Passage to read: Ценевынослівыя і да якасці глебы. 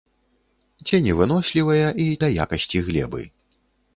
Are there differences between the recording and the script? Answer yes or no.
no